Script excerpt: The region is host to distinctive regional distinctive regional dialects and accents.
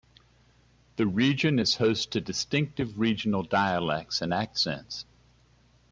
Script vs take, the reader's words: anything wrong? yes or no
yes